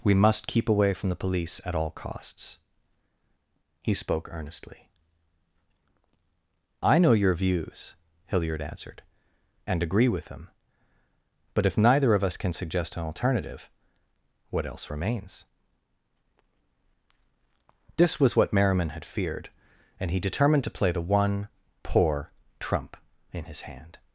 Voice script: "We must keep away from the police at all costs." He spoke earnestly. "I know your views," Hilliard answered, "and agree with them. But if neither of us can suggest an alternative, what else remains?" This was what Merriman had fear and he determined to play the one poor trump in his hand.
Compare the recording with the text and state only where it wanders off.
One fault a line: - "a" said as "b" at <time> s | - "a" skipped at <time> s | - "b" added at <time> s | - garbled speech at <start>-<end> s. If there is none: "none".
- "fear" said as "feared" at 19.0 s